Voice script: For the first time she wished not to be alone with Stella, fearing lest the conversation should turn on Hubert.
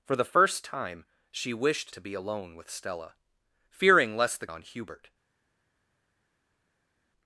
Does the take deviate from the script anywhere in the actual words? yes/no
yes